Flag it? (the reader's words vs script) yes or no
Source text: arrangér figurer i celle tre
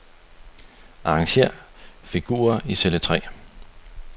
no